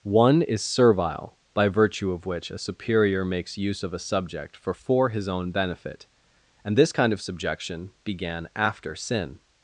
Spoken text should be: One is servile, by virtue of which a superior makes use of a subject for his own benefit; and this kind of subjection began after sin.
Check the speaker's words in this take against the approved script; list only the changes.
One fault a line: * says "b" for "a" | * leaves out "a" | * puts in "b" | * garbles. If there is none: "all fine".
* puts in "for"